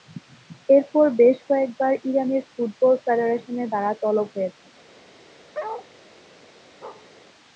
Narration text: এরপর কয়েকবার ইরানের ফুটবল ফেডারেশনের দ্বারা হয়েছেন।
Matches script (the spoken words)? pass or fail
fail